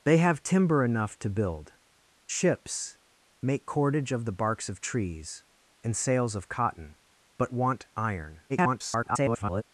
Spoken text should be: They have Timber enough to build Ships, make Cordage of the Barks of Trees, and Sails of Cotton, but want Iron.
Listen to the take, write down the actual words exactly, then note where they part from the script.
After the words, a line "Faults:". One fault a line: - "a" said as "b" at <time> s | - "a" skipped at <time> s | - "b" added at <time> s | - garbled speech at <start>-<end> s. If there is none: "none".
They have Timber enough to build Ships, make Cordage of the Barks of Trees, and Sails of Cotton, but want Iron. [garbled]
Faults:
- garbled speech at 8.5-9.6 s